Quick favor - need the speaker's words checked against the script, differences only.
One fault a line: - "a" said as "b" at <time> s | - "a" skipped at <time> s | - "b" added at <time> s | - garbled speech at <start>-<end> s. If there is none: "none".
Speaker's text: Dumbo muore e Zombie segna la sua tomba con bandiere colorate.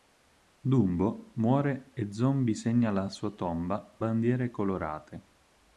- "con" skipped at 4.0 s